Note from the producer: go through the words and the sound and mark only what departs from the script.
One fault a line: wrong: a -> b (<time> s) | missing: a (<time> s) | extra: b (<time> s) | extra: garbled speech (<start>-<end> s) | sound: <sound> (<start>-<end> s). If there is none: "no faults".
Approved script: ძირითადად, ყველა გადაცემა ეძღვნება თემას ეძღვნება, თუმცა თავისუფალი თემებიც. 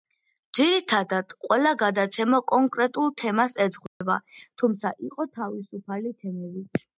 wrong: ეძღვნება -> კონკრეტულ (2.5 s)
sound: dropout (3.9-4.0 s)
extra: იყო (5.1 s)